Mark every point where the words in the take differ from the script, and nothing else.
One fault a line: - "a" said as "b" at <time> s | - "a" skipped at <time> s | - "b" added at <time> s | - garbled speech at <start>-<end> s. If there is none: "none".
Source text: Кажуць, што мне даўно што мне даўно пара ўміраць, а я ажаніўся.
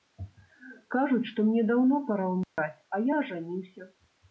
- "што мне даўно" skipped at 2.0 s